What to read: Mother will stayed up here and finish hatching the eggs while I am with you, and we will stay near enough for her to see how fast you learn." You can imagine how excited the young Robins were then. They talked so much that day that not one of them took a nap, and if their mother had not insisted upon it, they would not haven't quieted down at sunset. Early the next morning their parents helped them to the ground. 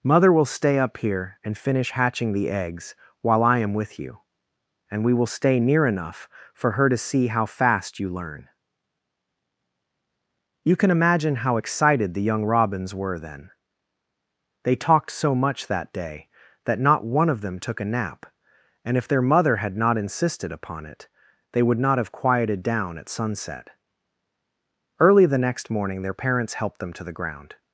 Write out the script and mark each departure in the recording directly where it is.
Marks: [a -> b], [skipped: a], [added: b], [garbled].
Mother will [stayed -> stay] up here and finish hatching the eggs while I am with you, and we will stay near enough for her to see how fast you learn." You can imagine how excited the young Robins were then. They talked so much that day that not one of them took a nap, and if their mother had not insisted upon it, they would not [haven't -> have] quieted down at sunset. Early the next morning their parents helped them to the ground.